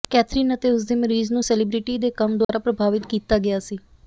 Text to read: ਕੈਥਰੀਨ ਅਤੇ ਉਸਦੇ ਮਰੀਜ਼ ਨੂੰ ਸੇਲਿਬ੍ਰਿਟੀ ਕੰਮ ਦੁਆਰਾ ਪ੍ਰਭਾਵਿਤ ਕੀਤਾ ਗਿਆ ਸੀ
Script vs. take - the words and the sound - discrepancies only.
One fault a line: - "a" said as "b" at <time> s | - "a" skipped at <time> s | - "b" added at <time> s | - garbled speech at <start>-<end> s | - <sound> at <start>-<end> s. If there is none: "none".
- "ਦੇ" added at 2.0 s
- dropout at 2.4-2.5 s